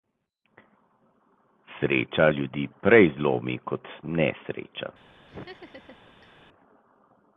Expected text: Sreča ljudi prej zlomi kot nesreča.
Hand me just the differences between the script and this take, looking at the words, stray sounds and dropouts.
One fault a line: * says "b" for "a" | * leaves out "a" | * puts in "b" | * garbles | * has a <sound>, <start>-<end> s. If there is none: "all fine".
* has a laugh, 5.3-6.4 s